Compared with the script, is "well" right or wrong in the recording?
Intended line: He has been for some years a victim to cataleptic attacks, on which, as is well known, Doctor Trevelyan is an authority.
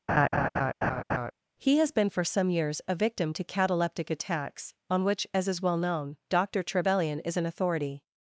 right